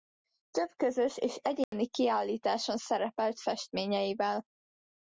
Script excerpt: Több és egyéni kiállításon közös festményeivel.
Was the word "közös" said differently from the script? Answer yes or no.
yes